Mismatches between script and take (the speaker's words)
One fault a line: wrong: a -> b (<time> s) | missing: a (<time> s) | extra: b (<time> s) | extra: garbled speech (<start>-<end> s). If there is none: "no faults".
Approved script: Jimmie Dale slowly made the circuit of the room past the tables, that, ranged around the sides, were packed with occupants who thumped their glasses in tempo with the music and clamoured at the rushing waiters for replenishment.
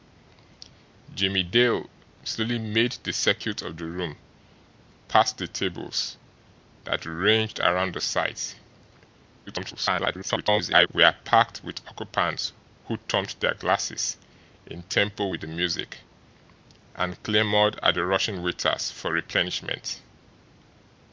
extra: garbled speech (9.5-10.9 s)